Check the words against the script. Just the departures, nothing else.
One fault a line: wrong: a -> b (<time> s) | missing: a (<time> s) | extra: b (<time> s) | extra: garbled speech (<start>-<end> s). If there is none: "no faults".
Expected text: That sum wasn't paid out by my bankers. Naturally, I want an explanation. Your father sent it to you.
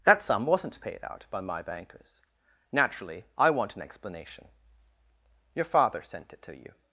no faults